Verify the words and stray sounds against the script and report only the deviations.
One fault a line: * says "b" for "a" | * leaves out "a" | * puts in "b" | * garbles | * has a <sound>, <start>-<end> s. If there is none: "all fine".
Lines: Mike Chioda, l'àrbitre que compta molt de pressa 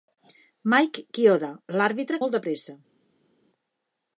* leaves out "que compta"